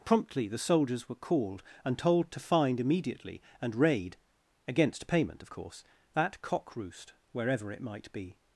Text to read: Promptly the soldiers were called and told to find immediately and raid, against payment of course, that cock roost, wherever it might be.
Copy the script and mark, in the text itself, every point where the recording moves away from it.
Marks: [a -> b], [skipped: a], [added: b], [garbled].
Promptly the soldiers were called and told to find immediately and raid, against payment of course, that cock roost, wherever it might be.